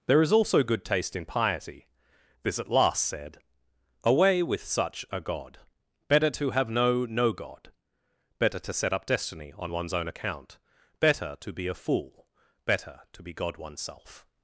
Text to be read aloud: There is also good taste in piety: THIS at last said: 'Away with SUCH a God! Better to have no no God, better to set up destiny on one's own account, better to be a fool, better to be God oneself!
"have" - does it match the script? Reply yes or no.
yes